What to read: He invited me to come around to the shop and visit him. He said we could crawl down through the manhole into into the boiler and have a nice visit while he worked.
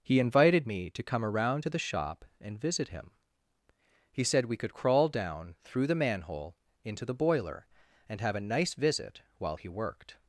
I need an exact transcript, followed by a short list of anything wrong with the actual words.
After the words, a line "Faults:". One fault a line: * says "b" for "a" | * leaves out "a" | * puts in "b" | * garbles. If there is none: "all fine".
He invited me to come around to the shop and visit him. He said we could crawl down through the manhole into the boiler and have a nice visit while he worked.
Faults:
* leaves out "into"